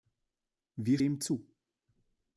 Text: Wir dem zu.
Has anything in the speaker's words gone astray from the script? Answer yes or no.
no